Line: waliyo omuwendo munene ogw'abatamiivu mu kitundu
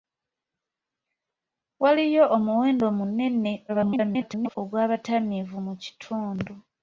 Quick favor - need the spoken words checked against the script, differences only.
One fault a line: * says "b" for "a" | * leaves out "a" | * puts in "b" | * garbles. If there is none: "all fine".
* garbles